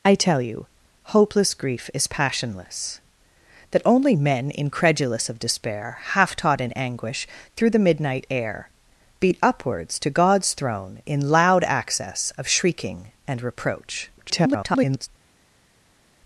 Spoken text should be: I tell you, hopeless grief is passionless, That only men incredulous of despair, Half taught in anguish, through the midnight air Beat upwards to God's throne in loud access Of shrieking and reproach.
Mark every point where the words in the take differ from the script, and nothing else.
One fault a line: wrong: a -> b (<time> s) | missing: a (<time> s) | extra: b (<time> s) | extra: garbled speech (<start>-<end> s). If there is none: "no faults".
extra: garbled speech (14.2-15.1 s)